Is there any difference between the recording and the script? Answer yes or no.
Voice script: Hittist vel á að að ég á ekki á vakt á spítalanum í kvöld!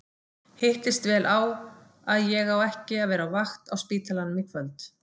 yes